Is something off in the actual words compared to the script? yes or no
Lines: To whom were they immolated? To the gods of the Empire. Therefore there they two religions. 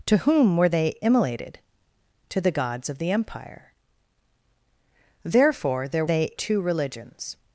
no